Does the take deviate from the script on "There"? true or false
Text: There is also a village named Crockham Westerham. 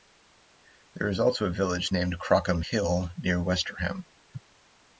false